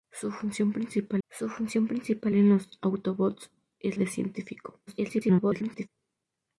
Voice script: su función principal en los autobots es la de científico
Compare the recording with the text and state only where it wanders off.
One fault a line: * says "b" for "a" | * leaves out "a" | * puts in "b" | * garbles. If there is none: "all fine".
* puts in "su función principal"
* leaves out "la"
* garbles